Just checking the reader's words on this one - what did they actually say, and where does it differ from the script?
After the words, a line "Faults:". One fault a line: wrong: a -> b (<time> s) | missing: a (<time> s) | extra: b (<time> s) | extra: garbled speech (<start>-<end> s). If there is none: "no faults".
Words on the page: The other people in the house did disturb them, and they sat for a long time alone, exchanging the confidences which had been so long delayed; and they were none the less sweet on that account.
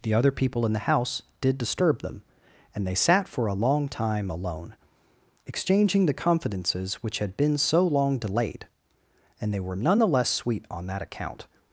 The other people in the house did disturb them, and they sat for a long time alone, exchanging the confidences which had been so long delayed; and they were none the less sweet on that account.
Faults:
no faults